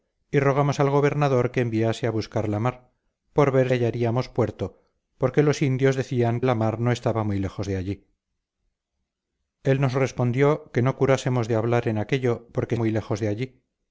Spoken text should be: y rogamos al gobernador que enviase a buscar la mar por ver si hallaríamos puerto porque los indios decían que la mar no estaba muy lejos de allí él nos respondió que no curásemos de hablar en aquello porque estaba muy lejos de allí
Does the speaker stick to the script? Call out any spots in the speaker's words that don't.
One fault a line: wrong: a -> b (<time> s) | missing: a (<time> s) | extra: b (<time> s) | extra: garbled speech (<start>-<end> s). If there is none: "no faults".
missing: si (3.7 s)
missing: que (6.4 s)
missing: estaba (12.8 s)